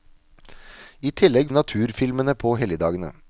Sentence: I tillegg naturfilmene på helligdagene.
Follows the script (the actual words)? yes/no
yes